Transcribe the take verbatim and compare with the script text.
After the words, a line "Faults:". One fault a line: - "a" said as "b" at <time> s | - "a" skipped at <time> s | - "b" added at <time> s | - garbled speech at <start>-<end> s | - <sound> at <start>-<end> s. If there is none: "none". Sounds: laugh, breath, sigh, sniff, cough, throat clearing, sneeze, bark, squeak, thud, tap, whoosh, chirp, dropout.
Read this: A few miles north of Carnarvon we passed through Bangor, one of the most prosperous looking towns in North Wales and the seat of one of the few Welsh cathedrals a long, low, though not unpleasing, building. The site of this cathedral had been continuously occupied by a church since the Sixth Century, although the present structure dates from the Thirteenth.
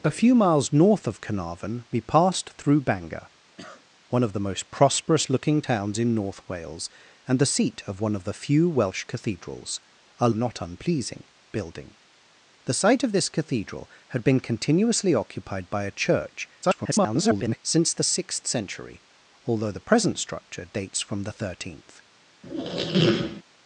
A few miles north of Carnarvon we passed through Bangor, one of the most prosperous looking towns in North Wales and the seat of one of the few Welsh cathedrals a not unpleasing, building. The site of this cathedral had been continuously occupied by a church [garbled] since the Sixth Century, although the present structure dates from the Thirteenth.
Faults:
- cough at 3.6-3.9 s
- "long low though" skipped at 10.3 s
- garbled speech at 16.6-17.6 s
- squeak at 22.4-23.4 s